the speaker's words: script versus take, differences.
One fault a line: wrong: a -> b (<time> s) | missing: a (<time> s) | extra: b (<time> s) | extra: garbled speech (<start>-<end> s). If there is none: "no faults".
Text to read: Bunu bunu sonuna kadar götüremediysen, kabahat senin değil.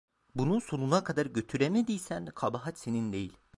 missing: bunu (0.6 s)